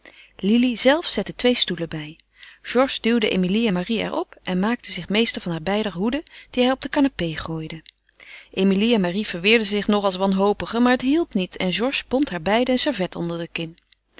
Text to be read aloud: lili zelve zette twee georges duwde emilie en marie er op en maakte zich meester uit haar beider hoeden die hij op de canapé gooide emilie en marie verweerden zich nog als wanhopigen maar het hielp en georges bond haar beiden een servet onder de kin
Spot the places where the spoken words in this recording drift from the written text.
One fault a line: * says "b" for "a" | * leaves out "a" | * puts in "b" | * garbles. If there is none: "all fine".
* puts in "stoelen bij"
* says "van" for "uit"
* puts in "niet"